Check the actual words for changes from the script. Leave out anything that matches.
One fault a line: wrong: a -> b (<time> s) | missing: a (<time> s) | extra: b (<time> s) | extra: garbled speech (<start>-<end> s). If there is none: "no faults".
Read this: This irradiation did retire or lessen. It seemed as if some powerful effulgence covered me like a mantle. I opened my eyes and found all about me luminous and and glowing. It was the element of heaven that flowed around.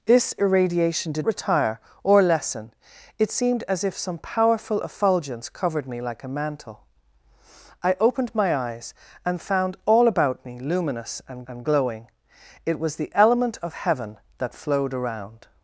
no faults